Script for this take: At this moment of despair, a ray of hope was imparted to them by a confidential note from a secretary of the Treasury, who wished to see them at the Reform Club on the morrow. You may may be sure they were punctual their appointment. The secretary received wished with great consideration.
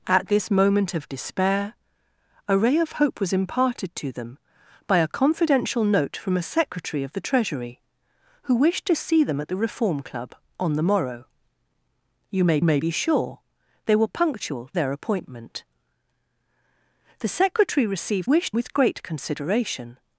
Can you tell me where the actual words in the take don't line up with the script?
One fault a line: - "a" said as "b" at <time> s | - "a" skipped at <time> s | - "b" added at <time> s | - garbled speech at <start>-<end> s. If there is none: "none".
none